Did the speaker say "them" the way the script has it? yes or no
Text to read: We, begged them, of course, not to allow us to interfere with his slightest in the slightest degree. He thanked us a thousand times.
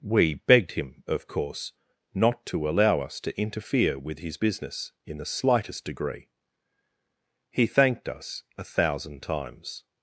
no